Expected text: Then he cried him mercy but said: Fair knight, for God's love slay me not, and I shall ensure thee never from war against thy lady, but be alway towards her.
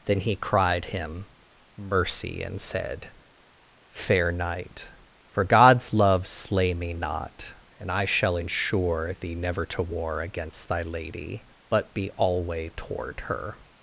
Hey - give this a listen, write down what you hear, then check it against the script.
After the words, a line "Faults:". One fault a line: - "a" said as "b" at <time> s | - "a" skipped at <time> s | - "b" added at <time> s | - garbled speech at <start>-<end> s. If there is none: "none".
Then he cried him mercy and said: Fair knight, for God's love slay me not, and I shall ensure thee never to war against thy lady, but be alway toward her.
Faults:
- "but" said as "and" at 2.4 s
- "from" said as "to" at 9.7 s
- "towards" said as "toward" at 12.7 s